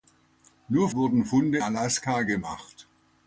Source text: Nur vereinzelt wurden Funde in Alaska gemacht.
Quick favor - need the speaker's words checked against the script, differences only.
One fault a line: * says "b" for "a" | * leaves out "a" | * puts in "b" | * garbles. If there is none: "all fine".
* leaves out "vereinzelt"
* leaves out "in"